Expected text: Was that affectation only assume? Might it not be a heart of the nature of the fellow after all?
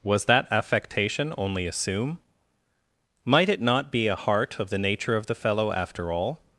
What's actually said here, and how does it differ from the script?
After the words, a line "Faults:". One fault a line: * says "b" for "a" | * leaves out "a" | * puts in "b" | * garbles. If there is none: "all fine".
Was that affectation only assume? Might it not be a heart of the nature of the fellow after all?
Faults:
all fine